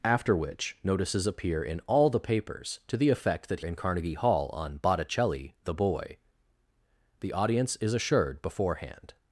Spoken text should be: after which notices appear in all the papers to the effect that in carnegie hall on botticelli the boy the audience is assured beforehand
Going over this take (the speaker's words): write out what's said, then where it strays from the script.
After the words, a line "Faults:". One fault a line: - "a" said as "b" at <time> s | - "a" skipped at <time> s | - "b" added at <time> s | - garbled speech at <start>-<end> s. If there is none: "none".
after which notices appear in all the papers to the effect that in carnegie hall on botticelli the boy the audience is assured beforehand
Faults:
none